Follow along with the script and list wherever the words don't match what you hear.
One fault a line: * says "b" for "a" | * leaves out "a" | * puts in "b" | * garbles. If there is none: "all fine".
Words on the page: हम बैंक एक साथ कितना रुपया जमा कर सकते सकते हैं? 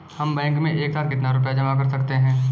* puts in "में"
* leaves out "सकते"